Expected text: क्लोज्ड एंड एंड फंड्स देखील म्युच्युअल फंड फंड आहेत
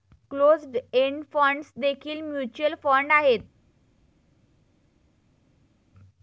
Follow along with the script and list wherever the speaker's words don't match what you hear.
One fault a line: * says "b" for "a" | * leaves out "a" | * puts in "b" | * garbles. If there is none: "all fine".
* leaves out "एंड"
* leaves out "फंड"